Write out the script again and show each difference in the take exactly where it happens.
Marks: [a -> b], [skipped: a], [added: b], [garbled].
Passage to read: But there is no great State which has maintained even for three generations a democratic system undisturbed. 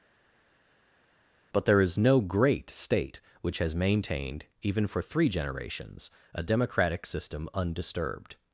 But there is no great State which has maintained even for three generations a democratic system undisturbed.